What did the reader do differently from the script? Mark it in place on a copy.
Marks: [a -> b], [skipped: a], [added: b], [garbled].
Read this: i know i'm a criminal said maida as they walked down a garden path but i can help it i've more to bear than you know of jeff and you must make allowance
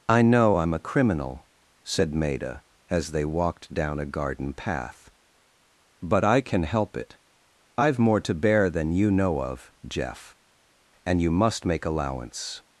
i know i'm a criminal said maida as they walked down a garden path but i can help it i've more to bear than you know of jeff and you must make allowance